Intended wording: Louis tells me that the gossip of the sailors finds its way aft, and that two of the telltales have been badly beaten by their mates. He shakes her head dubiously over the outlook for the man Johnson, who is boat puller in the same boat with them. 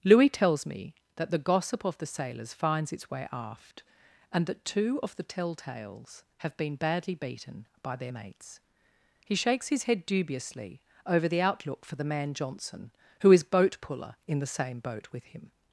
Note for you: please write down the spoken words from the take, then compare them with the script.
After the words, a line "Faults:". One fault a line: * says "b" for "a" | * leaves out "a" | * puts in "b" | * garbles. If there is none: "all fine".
Louis tells me that the gossip of the sailors finds its way aft, and that two of the telltales have been badly beaten by their mates. He shakes his head dubiously over the outlook for the man Johnson, who is boat puller in the same boat with him.
Faults:
* says "his" for "her"
* says "him" for "them"